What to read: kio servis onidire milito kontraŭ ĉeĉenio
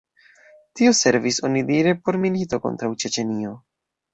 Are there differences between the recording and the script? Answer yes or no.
yes